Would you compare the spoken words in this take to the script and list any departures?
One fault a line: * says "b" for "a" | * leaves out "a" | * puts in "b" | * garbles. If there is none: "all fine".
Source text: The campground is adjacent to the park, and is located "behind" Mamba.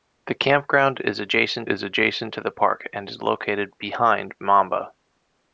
* puts in "is adjacent"